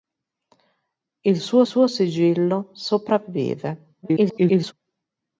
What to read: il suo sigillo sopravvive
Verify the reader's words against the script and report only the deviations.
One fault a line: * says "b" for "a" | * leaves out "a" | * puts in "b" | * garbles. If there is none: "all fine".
* puts in "suo"
* garbles